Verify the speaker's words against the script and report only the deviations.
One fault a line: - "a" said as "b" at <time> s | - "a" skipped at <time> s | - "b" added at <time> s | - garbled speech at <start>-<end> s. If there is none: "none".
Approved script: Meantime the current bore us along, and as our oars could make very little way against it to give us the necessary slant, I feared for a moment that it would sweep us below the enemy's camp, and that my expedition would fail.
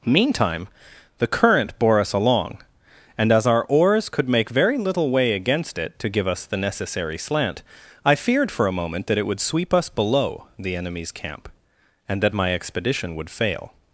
none